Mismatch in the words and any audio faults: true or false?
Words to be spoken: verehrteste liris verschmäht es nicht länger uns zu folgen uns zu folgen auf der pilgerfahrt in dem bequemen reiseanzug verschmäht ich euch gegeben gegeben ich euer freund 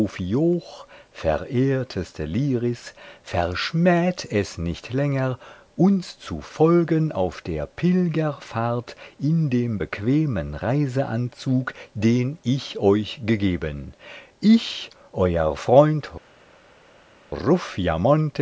true